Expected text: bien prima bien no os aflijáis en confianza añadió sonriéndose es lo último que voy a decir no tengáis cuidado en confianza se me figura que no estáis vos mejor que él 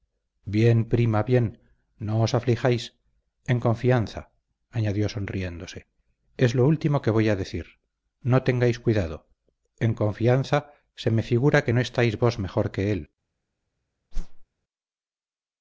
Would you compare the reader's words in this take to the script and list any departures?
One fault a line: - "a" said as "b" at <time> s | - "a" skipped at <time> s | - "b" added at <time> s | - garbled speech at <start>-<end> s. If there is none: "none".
none